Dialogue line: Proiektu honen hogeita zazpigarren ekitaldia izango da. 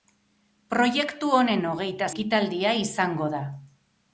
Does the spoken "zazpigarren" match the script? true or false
false